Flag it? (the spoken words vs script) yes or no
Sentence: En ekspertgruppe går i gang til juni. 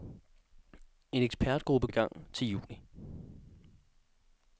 yes